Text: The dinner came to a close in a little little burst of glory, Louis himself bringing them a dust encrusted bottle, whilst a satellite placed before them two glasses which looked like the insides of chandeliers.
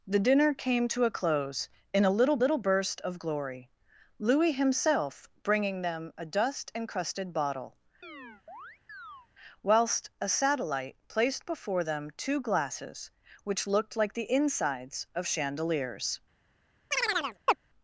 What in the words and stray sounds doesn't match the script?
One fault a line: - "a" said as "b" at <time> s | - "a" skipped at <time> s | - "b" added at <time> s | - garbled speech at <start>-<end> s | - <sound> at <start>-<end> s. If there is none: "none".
- chirp at 8.0-9.3 s
- chirp at 16.9-17.6 s